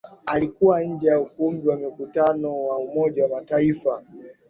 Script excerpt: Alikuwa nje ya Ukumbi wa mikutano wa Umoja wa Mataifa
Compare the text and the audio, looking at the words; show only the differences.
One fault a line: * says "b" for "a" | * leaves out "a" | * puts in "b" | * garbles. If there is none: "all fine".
all fine